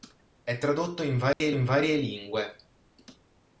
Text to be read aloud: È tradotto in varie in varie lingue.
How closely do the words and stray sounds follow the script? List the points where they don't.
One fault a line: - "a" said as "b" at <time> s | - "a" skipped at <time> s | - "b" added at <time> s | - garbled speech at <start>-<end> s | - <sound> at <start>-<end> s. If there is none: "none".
- dropout at 1.3-1.4 s